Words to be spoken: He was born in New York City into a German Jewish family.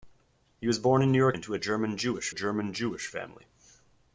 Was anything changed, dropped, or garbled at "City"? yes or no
yes